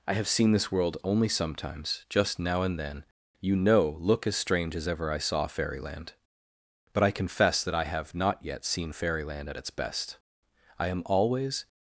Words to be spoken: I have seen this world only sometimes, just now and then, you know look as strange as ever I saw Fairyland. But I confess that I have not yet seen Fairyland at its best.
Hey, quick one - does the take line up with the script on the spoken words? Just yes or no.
no